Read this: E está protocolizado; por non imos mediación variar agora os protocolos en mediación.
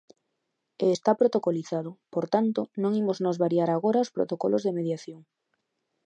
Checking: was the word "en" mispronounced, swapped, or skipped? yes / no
yes